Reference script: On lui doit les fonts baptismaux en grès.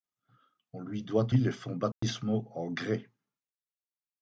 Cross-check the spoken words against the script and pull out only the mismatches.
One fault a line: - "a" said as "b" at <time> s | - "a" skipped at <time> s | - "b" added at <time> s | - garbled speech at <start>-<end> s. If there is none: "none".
none